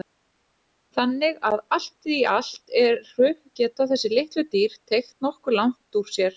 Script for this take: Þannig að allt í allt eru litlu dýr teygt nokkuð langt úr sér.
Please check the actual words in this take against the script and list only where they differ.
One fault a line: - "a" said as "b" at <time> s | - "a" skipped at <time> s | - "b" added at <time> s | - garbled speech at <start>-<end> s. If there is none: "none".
- "geta þessi" added at 3.6 s